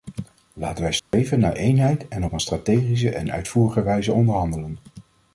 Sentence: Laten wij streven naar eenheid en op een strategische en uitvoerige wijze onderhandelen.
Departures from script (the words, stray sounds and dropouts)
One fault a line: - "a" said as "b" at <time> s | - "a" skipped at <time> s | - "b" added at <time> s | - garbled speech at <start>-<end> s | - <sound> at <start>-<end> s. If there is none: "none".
- dropout at 1.0-1.1 s